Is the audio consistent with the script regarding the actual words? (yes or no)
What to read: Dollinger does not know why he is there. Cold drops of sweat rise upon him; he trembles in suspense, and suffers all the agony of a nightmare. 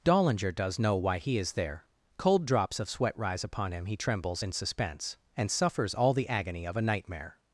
no